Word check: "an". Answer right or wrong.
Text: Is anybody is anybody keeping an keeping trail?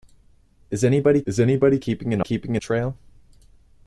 right